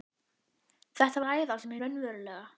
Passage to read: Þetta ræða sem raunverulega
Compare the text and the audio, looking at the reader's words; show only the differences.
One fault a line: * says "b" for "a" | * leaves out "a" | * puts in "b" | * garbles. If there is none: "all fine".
all fine